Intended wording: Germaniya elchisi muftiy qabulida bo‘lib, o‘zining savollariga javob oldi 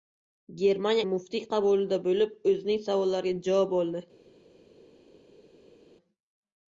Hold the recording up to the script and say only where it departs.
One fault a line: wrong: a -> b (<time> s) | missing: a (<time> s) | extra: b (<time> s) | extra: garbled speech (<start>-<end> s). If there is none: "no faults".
missing: elchisi (1.0 s)